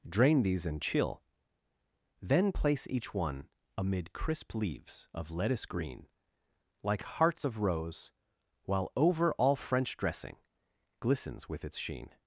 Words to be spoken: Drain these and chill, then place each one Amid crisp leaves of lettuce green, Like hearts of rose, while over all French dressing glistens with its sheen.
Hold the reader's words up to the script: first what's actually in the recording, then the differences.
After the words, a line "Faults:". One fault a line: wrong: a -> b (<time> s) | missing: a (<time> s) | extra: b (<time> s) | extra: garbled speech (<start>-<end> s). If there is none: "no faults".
Drain these and chill, then place each one Amid crisp leaves of lettuce green, Like hearts of rose, while over all French dressing glistens with its sheen.
Faults:
no faults